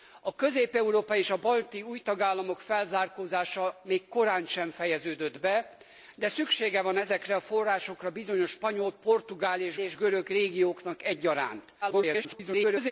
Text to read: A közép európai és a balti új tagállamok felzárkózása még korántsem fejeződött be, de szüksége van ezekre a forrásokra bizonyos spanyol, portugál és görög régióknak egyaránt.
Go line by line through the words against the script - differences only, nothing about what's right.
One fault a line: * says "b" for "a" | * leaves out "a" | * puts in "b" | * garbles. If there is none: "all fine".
* puts in "és"
* garbles